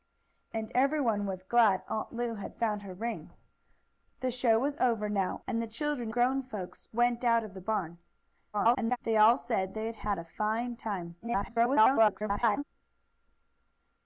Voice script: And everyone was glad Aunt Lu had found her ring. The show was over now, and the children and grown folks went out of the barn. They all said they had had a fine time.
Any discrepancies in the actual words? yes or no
yes